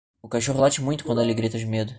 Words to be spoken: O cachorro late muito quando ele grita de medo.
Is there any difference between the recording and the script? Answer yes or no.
no